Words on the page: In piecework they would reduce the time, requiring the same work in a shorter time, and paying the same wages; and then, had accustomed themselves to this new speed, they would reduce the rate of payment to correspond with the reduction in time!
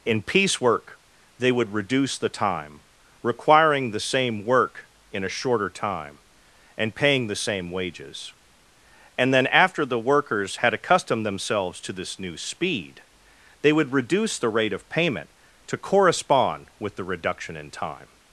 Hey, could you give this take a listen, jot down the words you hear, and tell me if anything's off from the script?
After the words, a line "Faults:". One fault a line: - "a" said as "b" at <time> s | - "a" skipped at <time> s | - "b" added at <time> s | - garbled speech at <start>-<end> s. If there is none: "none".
In piecework they would reduce the time, requiring the same work in a shorter time, and paying the same wages; and then, after the workers had accustomed themselves to this new speed, they would reduce the rate of payment to correspond with the reduction in time!
Faults:
- "after the workers" added at 9.4 s